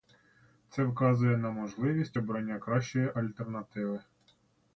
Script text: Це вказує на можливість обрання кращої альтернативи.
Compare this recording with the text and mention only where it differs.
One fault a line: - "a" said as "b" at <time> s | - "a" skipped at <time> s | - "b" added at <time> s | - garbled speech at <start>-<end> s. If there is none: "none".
none